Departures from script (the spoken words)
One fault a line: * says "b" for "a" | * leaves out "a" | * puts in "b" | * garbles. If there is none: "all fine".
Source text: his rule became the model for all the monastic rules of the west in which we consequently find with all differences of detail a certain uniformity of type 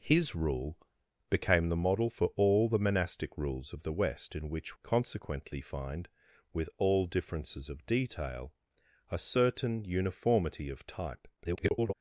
* leaves out "we"
* garbles